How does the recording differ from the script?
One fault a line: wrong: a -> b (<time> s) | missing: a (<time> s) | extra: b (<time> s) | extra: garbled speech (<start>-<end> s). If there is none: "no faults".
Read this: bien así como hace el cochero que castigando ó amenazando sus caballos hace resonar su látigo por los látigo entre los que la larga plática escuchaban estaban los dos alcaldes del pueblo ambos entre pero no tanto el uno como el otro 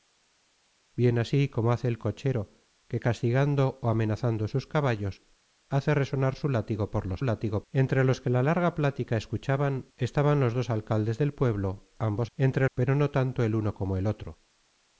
no faults